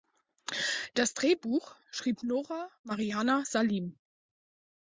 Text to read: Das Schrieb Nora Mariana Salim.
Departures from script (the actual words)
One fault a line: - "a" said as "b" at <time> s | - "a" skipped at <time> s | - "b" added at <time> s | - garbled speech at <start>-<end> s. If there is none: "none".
- "Drehbuch" added at 1.1 s